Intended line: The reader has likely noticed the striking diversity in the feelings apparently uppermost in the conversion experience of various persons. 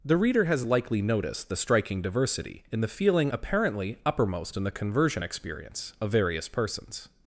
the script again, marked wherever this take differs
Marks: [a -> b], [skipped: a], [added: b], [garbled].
The reader has likely noticed the striking diversity in the [feelings -> feeling] apparently uppermost in the conversion experience of various persons.